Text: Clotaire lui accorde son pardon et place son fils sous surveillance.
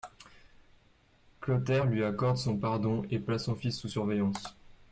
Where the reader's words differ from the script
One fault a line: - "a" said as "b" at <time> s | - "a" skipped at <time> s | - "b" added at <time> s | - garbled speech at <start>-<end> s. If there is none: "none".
none